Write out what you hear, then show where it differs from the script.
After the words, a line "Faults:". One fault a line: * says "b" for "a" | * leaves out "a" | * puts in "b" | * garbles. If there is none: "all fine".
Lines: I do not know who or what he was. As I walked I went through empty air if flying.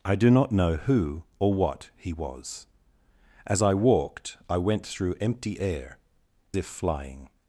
I do not know who or what he was. As I walked I went through empty air if flying.
Faults:
all fine